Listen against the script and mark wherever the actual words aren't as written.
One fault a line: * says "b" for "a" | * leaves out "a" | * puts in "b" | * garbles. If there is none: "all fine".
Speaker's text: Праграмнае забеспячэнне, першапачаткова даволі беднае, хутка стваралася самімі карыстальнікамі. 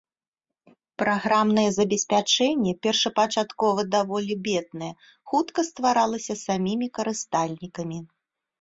all fine